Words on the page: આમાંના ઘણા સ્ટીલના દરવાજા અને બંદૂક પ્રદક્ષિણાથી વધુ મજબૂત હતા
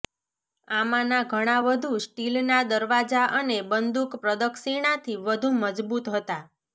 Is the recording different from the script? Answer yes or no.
yes